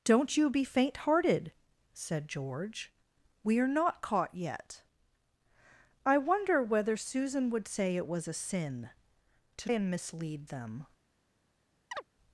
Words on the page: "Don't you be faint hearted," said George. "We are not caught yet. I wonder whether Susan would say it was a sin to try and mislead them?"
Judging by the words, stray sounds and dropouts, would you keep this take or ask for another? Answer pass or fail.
fail